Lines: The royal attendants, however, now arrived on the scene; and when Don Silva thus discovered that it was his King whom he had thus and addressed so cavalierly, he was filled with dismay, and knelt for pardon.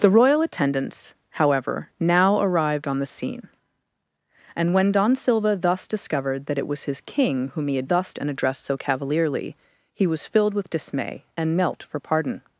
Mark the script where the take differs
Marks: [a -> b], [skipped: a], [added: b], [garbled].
The royal attendants, however, now arrived on the scene; and when Don Silva thus discovered that it was his King whom he had thus and addressed so cavalierly, he was filled with dismay, and knelt for pardon.